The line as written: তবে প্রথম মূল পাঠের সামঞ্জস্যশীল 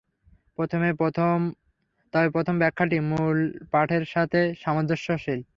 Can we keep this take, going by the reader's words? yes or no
no